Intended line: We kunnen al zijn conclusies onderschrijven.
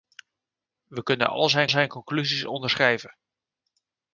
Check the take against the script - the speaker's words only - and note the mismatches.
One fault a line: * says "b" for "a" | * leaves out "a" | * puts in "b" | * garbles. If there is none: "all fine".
* puts in "zijn"